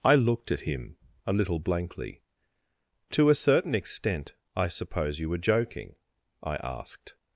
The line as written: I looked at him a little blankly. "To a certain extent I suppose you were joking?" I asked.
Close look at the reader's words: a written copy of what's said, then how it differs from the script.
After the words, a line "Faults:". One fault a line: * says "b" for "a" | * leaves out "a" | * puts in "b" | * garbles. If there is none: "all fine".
I looked at him a little blankly. "To a certain extent I suppose you were joking?" I asked.
Faults:
all fine